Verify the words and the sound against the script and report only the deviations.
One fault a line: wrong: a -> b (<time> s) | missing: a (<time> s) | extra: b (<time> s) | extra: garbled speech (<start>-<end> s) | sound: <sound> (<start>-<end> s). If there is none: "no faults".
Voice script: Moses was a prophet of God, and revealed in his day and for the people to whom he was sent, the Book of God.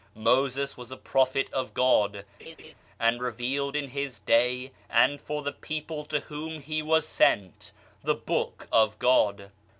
sound: laugh (2.4-2.7 s)